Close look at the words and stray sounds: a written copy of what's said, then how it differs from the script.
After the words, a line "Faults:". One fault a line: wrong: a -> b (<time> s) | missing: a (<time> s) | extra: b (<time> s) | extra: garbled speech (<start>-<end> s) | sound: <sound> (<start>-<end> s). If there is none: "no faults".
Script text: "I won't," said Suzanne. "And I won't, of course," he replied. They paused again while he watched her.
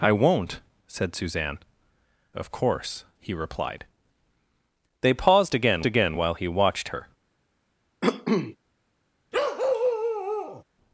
"I won't," said Suzanne. "Of course," he replied. They paused again again while he watched her.
Faults:
missing: And I won't (1.6 s)
extra: again (5.9 s)
sound: cough (8.0-8.6 s)
sound: bark (9.3-10.6 s)